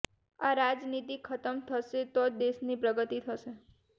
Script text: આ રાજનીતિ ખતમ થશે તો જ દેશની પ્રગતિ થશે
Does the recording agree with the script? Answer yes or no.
yes